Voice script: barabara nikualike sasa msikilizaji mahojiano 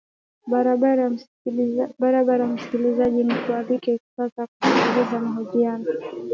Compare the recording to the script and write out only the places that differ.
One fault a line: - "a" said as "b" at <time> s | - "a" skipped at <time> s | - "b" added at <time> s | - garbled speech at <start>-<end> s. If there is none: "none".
- "msikilizaji" added at 2.5 s
- "msikilizaji" said as "kusikiliza" at 4.5 s